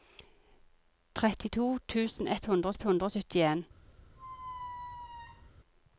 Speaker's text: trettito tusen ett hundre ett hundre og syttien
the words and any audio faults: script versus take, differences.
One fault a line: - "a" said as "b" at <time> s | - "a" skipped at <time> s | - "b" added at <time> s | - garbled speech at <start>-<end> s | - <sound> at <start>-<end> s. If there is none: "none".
- squeak at 4.2-5.5 s